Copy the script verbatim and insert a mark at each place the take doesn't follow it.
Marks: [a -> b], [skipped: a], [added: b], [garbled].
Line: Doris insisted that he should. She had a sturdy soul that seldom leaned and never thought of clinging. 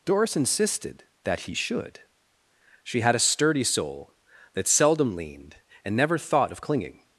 Doris insisted that he should. She had a sturdy soul that seldom leaned and never thought of clinging.